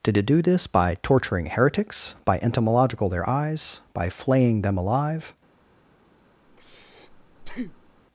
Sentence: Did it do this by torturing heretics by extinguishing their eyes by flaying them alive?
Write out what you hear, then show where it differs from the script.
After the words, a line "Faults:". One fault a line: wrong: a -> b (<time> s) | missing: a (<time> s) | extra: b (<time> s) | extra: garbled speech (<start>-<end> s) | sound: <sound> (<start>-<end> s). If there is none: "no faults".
Did it do this by torturing heretics by entomological their eyes by flaying them alive?
Faults:
wrong: extinguishing -> entomological (2.4 s)
sound: breath (6.5-8.0 s)